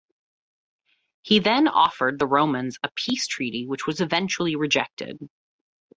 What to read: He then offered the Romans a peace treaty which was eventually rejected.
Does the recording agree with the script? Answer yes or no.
yes